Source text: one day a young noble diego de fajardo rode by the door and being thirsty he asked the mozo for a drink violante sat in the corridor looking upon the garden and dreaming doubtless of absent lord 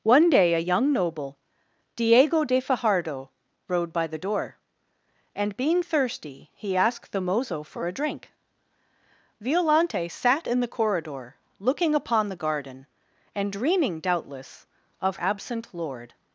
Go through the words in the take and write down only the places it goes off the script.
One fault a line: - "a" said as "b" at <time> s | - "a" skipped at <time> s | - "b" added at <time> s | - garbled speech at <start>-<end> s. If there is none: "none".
none